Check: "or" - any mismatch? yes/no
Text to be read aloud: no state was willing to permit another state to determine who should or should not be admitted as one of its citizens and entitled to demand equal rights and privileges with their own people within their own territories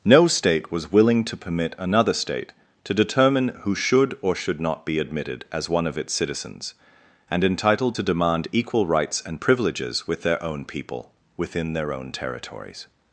no